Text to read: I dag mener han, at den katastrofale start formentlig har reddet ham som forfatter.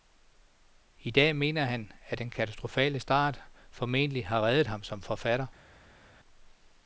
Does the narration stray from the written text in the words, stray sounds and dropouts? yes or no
no